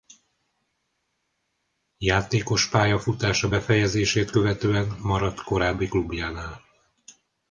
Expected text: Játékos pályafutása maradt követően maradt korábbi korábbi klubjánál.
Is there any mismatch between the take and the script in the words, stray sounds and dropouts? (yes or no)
yes